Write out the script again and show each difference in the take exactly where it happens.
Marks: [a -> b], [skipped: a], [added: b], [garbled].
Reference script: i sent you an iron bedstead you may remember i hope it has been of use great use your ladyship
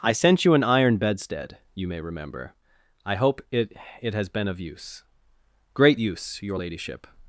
i sent you an iron bedstead you may remember i hope it [added: it] has been of use great use your ladyship